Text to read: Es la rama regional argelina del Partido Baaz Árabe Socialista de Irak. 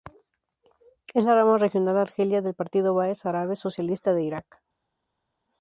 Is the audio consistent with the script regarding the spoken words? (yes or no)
yes